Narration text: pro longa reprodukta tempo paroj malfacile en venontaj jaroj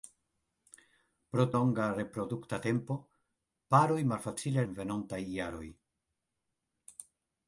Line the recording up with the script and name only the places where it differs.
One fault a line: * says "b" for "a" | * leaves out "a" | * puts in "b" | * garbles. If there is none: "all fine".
all fine